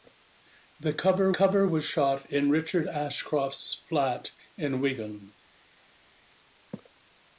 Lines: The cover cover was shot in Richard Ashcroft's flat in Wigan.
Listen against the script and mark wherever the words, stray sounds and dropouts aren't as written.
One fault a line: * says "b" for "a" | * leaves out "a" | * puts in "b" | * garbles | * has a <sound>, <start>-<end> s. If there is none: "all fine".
all fine